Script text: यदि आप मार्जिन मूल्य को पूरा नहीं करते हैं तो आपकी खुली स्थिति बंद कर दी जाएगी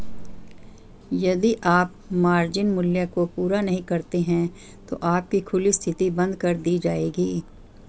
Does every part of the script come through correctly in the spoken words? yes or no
yes